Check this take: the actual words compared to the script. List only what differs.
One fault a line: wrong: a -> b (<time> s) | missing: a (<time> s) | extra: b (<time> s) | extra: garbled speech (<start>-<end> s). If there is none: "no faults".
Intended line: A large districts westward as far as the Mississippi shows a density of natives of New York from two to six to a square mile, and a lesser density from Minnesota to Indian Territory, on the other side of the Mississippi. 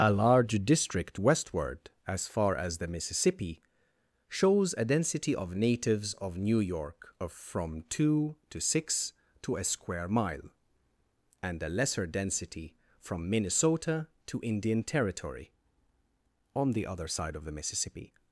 wrong: districts -> district (0.7 s)
extra: of (7.2 s)